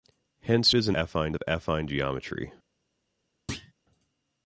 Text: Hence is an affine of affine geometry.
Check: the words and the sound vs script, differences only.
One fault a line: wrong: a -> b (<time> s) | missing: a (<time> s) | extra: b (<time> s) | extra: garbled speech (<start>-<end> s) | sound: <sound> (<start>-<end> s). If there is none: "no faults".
sound: thud (3.5-3.7 s)